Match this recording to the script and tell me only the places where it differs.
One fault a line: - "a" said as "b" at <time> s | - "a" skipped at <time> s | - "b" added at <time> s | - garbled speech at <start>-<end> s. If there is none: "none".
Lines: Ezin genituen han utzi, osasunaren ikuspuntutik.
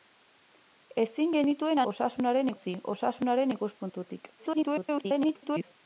- "han" said as "osasunaren" at 1.9 s
- garbled speech at 4.4-5.7 s